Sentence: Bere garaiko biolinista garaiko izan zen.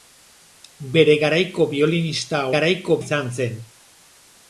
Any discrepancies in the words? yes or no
no